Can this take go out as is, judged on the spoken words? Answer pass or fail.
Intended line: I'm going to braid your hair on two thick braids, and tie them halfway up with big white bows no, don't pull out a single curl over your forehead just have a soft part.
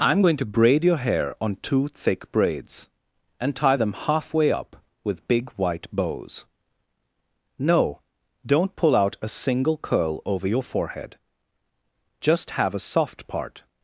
pass